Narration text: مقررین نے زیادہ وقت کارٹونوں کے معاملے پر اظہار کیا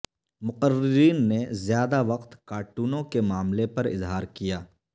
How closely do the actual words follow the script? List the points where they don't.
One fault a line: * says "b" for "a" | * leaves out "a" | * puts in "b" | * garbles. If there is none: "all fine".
all fine